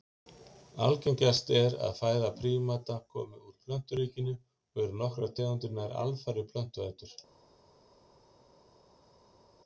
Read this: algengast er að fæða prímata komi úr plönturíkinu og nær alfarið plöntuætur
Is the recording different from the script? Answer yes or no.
yes